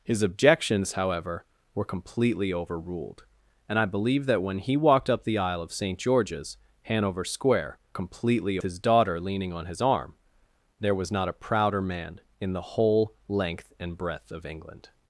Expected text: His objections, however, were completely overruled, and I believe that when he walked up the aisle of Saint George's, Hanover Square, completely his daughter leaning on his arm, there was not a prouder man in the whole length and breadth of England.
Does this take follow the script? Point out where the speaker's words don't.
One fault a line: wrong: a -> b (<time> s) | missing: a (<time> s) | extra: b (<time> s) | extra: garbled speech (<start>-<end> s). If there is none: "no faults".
no faults